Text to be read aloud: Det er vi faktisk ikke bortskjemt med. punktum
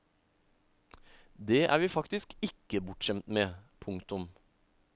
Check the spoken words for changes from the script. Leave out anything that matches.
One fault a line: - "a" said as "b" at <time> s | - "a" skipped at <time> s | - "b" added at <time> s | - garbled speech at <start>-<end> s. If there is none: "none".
none